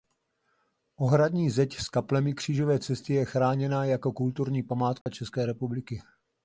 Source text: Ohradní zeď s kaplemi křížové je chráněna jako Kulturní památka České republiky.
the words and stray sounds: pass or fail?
fail